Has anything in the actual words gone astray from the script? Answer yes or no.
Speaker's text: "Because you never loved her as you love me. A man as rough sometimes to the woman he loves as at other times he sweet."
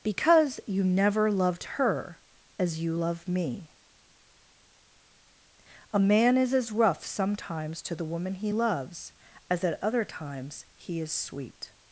yes